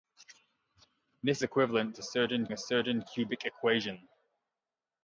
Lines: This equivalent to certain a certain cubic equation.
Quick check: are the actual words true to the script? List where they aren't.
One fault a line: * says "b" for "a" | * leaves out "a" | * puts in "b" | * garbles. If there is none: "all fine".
all fine